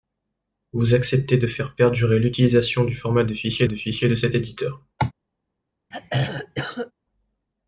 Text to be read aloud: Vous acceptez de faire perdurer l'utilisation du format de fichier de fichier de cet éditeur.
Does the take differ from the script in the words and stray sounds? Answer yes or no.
yes